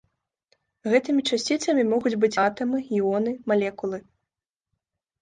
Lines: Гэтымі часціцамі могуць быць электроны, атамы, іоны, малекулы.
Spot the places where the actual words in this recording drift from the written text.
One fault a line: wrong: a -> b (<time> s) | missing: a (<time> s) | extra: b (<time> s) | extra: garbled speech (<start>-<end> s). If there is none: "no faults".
missing: электроны (2.4 s)